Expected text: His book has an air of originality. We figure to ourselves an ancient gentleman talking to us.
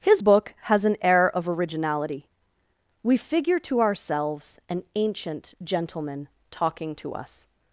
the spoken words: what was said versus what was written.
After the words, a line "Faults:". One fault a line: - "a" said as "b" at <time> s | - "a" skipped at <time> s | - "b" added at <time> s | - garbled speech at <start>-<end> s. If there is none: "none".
His book has an air of originality. We figure to ourselves an ancient gentleman talking to us.
Faults:
none